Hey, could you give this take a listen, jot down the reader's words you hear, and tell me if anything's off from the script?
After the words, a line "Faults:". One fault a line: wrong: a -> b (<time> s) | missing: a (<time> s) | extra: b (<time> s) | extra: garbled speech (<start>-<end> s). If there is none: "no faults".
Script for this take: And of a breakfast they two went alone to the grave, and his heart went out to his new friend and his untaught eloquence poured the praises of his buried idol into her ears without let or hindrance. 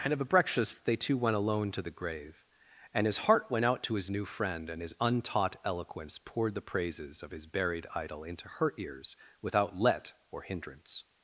And of a breakfast they two went alone to the grave, and his heart went out to his new friend and his untaught eloquence poured the praises of his buried idol into her ears without let or hindrance.
Faults:
no faults